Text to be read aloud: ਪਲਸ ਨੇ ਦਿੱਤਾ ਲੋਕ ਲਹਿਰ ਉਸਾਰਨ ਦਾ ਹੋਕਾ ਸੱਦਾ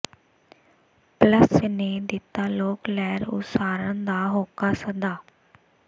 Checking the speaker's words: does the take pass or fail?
pass